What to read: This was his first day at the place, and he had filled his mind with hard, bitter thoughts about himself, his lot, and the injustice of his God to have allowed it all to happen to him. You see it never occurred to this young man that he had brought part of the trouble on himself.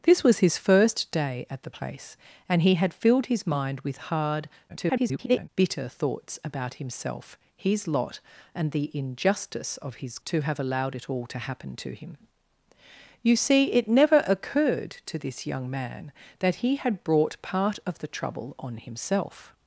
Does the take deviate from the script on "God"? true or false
true